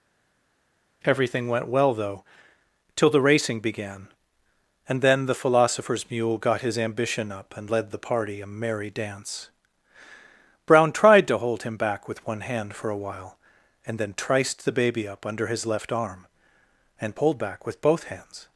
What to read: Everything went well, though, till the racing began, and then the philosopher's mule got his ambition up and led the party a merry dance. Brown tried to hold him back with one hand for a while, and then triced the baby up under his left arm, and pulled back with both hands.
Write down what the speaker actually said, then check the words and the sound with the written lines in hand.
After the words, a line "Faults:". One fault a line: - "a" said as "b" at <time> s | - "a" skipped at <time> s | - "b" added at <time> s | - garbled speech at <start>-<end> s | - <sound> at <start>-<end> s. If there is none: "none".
Everything went well, though, till the racing began, and then the philosopher's mule got his ambition up and led the party a merry dance. Brown tried to hold him back with one hand for a while, and then triced the baby up under his left arm, and pulled back with both hands.
Faults:
none